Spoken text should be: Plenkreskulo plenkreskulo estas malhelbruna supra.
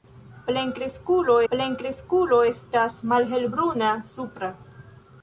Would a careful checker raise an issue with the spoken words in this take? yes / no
no